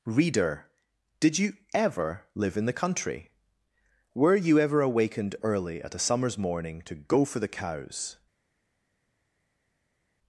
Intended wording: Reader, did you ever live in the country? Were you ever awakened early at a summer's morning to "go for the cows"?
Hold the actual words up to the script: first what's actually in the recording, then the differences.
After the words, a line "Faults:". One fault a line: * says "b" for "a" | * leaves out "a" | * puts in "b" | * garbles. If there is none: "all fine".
Reader, did you ever live in the country? Were you ever awakened early at a summer's morning to "go for the cows"?
Faults:
all fine